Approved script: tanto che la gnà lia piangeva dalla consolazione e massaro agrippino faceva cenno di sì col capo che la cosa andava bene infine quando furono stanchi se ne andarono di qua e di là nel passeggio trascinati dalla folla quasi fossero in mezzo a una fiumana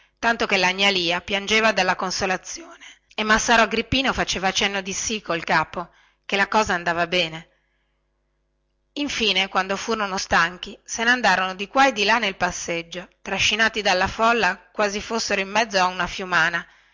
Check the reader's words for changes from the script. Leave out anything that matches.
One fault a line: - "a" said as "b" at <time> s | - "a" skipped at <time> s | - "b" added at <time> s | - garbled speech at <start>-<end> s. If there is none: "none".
none